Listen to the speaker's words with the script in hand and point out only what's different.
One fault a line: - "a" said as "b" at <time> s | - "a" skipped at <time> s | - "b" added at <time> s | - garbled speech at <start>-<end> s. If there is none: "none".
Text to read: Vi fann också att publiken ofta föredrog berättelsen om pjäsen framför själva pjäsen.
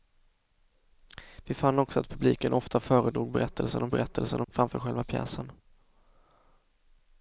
- "pjäsen" said as "berättelsen" at 3.9 s